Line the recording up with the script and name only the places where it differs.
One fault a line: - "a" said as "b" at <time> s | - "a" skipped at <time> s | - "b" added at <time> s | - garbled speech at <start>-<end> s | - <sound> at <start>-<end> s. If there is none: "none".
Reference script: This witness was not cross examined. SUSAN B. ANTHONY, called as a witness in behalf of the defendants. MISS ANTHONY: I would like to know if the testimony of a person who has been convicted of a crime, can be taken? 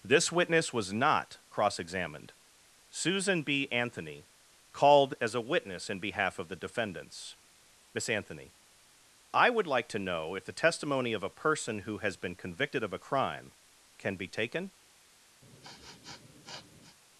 - sniff at 15.4-17.0 s